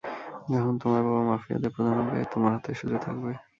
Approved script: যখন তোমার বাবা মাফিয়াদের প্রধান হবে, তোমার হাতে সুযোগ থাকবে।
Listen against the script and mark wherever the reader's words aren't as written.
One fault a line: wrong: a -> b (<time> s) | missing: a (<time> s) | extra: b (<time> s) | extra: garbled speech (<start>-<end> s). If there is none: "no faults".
no faults